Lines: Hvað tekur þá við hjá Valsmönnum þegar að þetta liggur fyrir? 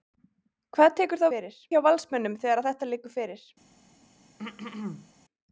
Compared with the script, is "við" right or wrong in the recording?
wrong